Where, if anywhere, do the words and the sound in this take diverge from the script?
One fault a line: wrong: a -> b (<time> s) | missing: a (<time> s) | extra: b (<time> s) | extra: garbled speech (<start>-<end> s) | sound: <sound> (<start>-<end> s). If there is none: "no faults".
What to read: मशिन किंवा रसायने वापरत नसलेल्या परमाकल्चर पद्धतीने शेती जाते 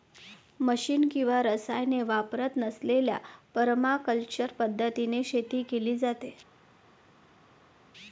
extra: केली (5.7 s)